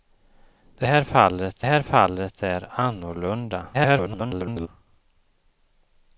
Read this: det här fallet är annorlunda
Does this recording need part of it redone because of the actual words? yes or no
yes